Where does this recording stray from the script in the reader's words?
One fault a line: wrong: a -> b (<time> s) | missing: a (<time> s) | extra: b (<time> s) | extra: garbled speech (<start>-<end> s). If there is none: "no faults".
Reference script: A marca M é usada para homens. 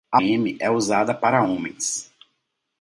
missing: marca (0.2 s)